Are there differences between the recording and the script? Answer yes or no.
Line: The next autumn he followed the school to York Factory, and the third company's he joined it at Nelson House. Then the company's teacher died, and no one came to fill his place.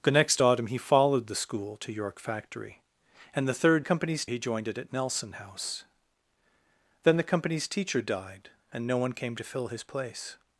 no